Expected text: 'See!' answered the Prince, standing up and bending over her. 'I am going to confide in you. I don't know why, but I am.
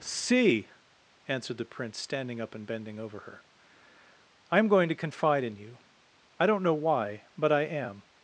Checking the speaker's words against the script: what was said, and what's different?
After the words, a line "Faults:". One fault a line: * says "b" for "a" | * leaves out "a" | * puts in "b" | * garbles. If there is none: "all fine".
'See!' answered the Prince, standing up and bending over her. 'I am going to confide in you. I don't know why, but I am.
Faults:
all fine